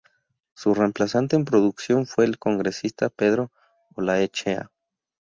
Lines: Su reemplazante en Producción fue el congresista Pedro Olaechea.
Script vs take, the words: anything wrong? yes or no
no